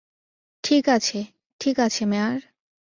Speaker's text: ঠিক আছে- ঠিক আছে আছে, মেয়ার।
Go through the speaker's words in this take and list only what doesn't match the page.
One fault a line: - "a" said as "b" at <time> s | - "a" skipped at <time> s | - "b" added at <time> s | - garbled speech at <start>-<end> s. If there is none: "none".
- "আছে" skipped at 2.0 s